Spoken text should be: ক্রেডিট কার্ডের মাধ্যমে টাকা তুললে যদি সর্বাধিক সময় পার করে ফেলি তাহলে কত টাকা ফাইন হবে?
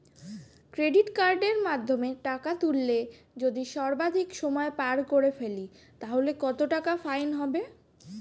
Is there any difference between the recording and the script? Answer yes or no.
no